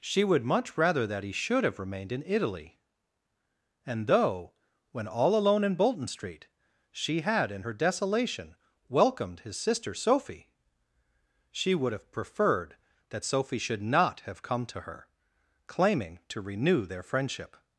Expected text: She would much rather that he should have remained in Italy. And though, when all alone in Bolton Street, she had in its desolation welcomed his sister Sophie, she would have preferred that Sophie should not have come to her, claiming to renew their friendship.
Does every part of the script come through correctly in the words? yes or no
no